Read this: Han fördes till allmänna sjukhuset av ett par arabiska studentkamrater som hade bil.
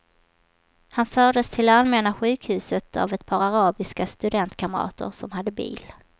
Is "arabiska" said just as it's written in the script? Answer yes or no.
yes